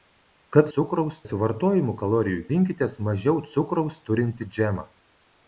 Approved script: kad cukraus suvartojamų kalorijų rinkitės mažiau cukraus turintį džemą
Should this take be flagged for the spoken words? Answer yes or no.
no